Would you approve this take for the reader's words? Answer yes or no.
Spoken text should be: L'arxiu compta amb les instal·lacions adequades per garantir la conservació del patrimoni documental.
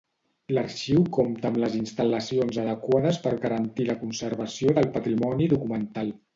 yes